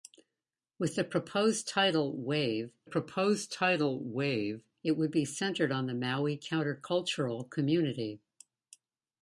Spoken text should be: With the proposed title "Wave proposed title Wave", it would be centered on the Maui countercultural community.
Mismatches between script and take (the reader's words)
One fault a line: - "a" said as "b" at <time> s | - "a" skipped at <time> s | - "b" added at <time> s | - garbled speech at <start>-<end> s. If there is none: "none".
none